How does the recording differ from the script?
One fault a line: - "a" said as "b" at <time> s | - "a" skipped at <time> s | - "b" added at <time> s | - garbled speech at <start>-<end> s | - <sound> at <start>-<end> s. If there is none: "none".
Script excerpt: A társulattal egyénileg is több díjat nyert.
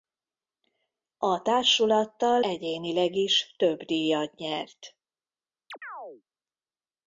- chirp at 5.7-6.2 s